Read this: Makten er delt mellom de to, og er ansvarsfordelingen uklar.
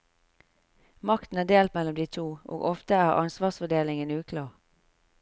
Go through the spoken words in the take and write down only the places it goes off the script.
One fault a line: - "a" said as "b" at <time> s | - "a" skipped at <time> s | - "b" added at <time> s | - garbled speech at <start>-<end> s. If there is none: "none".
- "ofte" added at 2.7 s